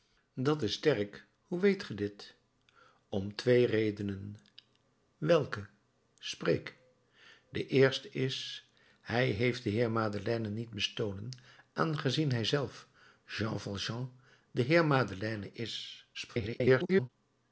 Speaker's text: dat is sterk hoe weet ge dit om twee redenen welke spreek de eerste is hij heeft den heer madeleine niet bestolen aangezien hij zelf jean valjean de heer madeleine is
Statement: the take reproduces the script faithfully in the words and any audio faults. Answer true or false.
false